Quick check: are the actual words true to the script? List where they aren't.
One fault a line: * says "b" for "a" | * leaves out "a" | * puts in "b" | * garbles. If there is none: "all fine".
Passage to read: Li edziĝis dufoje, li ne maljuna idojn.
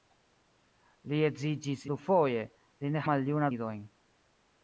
all fine